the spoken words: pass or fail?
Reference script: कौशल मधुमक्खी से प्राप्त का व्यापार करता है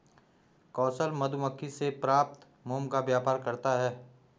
fail